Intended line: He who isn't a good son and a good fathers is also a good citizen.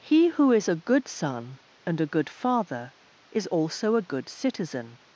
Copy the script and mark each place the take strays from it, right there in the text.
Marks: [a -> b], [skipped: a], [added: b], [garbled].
He who [isn't -> is] a good son and a good [fathers -> father] is also a good citizen.